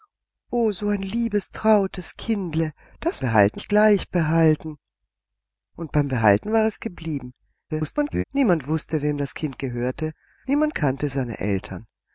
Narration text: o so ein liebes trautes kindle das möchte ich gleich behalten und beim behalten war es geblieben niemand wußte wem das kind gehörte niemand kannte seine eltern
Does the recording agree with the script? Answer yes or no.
no